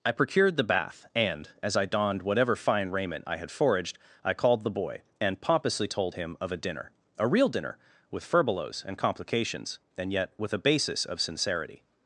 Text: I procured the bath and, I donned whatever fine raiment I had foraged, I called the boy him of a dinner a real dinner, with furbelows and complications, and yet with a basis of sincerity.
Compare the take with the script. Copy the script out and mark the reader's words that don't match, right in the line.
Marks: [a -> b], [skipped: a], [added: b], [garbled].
I procured the bath and, [added: as] I donned whatever fine raiment I had foraged, I called the boy [added: and pompously told] him of a dinner a real dinner, with furbelows and complications, and yet with a basis of sincerity.